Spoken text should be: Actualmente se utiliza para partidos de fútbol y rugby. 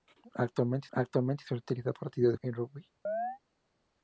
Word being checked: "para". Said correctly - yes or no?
no